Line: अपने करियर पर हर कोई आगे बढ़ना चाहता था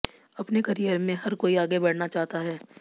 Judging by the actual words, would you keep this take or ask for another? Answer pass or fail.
fail